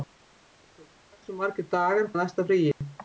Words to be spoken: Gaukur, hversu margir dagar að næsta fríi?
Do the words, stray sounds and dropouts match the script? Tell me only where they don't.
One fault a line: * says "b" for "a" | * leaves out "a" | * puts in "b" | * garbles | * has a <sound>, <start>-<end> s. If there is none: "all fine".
* has a dropout, 2.7-2.8 s